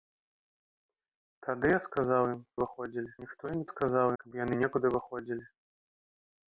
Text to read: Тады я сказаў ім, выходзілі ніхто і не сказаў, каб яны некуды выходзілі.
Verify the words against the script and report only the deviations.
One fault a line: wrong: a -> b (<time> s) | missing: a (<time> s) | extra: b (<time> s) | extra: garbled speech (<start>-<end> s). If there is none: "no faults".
no faults